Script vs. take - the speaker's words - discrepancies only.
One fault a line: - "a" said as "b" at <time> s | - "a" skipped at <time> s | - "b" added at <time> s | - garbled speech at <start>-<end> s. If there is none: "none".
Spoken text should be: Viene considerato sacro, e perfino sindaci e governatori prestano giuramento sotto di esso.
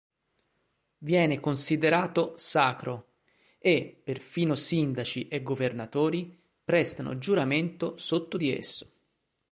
none